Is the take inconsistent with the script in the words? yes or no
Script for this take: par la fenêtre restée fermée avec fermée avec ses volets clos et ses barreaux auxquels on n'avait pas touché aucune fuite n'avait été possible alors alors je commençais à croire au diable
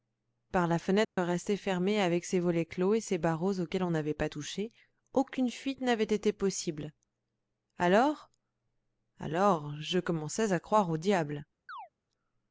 yes